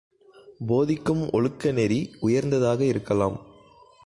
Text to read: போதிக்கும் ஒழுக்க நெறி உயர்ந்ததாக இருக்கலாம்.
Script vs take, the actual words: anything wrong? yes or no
no